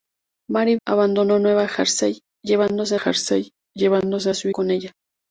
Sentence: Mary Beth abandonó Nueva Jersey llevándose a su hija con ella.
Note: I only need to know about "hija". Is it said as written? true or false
false